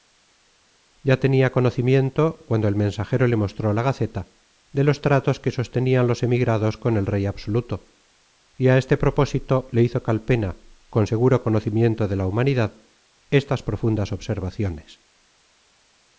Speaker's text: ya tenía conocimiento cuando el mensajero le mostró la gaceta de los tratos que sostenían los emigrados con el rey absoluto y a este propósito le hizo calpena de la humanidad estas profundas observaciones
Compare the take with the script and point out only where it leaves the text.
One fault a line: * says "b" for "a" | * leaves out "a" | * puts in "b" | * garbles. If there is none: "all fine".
* puts in "con seguro conocimiento"